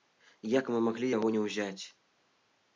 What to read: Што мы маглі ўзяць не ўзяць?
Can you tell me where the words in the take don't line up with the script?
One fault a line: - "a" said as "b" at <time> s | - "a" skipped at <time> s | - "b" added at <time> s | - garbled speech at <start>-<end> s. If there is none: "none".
- "Што" said as "Як" at 0.5 s
- "ўзяць" said as "яго" at 1.2 s